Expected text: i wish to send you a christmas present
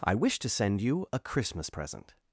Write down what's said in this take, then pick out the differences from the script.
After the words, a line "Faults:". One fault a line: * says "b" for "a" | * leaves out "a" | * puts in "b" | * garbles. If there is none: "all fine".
i wish to send you a christmas present
Faults:
all fine